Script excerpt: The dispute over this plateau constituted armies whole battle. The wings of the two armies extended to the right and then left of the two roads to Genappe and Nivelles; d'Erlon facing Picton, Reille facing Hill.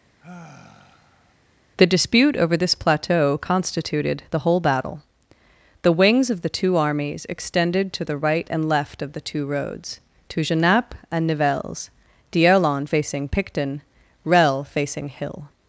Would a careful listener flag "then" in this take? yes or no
yes